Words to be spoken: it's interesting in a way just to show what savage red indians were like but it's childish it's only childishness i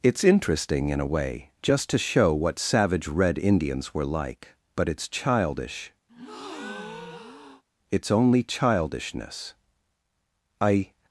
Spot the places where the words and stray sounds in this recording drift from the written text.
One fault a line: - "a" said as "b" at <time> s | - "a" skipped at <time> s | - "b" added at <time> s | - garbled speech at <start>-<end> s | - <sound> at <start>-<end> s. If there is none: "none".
- breath at 6.1-7.6 s